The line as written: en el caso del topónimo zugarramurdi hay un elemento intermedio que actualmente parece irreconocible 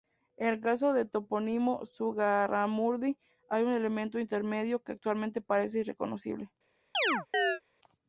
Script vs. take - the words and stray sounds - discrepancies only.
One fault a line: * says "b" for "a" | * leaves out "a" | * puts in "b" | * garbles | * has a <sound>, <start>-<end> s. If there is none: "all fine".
* has a chirp, 6.9-7.6 s